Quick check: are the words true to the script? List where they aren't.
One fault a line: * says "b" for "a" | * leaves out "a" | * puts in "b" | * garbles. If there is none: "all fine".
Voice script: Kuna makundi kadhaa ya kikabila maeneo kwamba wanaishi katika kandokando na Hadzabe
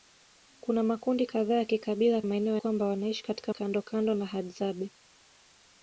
all fine